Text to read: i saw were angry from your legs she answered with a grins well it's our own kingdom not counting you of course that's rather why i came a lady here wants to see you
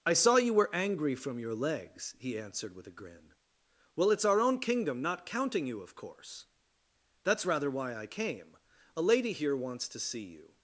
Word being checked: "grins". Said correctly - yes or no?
no